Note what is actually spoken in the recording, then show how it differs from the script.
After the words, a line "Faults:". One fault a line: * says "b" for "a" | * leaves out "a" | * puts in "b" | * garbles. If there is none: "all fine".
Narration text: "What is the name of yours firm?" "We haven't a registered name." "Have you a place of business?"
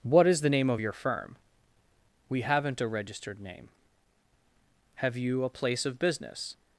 "What is the name of your firm?" "We haven't a registered name." "Have you a place of business?"
Faults:
* says "your" for "yours"